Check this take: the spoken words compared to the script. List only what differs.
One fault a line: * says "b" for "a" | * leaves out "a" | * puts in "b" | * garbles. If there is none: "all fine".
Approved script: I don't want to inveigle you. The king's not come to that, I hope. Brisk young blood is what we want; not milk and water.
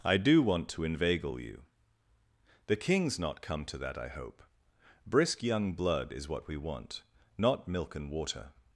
* says "do" for "don't"